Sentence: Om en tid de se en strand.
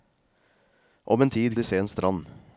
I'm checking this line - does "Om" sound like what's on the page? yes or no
yes